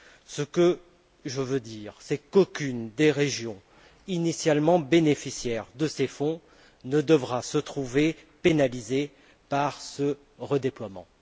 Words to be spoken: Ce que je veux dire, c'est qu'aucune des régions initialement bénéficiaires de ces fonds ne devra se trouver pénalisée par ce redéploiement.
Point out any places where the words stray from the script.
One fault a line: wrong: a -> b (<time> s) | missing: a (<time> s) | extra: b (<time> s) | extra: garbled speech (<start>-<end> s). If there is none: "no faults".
no faults